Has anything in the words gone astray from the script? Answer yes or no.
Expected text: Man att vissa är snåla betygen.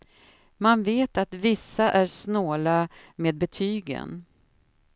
yes